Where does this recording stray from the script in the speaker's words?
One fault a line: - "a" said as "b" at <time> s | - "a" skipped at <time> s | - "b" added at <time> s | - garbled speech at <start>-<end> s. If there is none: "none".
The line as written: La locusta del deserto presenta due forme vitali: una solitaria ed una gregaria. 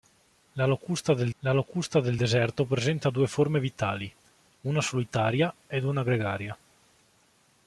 - "la locusta del" added at 1.4 s